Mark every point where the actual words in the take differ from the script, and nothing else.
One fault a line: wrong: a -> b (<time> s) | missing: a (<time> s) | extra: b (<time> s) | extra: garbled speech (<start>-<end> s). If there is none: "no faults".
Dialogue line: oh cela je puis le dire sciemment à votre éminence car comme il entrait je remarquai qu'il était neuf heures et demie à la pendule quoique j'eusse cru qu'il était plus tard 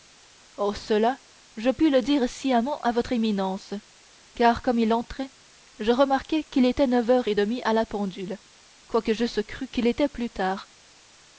no faults